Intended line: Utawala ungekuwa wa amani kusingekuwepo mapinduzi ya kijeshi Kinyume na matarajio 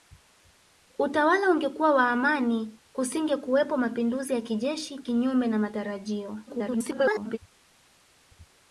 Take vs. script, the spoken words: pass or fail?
fail